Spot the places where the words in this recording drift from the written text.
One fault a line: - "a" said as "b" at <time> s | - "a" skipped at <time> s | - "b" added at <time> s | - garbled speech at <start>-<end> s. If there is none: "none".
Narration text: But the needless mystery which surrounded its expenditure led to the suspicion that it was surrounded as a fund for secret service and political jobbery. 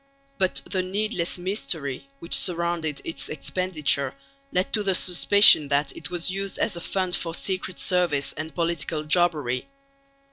- "surrounded" said as "used" at 6.3 s